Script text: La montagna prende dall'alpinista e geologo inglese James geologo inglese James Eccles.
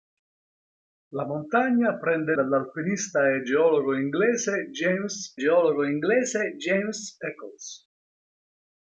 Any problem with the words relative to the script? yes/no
no